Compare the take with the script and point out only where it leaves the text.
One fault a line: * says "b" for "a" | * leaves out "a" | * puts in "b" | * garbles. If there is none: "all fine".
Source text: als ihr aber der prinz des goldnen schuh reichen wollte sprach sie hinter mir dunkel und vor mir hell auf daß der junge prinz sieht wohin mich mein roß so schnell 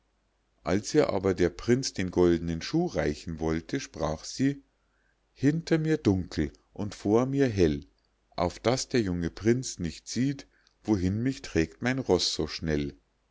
* says "den" for "des"
* puts in "nicht"
* puts in "trägt"